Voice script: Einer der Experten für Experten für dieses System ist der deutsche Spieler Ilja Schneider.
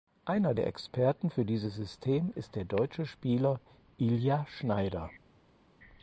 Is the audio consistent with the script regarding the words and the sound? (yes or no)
no